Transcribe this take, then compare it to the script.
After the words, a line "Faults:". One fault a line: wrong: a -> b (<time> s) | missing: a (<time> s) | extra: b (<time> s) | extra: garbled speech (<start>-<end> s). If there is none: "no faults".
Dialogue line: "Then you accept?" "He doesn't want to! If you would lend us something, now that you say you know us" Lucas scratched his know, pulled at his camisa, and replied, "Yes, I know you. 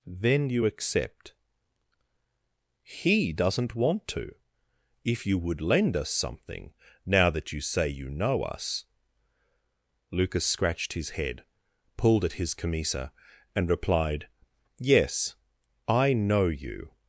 "Then you accept?" "He doesn't want to! If you would lend us something, now that you say you know us" Lucas scratched his head, pulled at his camisa, and replied, "Yes, I know you.
Faults:
wrong: know -> head (11.1 s)